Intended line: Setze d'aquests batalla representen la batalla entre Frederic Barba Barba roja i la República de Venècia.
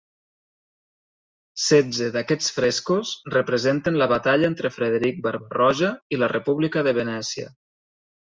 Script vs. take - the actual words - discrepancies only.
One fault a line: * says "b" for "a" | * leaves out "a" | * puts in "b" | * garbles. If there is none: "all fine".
* says "frescos" for "batalla"
* leaves out "Barba"